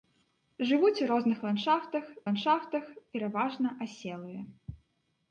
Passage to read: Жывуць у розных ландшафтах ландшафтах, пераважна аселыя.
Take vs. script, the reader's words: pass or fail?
pass